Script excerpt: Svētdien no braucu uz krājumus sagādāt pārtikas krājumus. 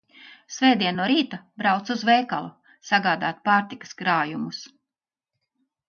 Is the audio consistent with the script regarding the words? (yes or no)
no